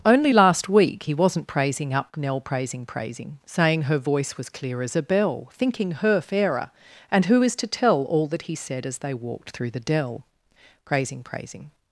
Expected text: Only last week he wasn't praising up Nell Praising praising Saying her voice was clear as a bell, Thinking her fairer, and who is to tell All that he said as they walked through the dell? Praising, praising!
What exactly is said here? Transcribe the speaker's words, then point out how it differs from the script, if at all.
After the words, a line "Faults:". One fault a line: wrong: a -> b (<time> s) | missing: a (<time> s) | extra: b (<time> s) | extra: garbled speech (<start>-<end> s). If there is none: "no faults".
Only last week he wasn't praising up Nell Praising praising Saying her voice was clear as a bell, Thinking her fairer, and who is to tell All that he said as they walked through the dell? Praising, praising!
Faults:
no faults